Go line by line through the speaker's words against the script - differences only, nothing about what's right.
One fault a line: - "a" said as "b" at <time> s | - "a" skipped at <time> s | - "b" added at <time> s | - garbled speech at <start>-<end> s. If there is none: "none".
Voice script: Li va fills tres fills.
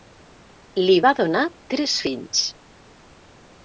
- "fills" said as "donar" at 1.2 s